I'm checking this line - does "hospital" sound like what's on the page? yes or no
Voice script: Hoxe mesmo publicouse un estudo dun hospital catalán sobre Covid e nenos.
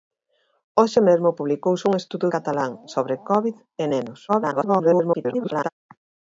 no